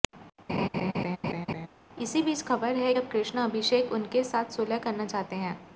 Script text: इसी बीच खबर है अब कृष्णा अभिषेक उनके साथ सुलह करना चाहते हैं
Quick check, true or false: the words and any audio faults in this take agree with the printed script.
false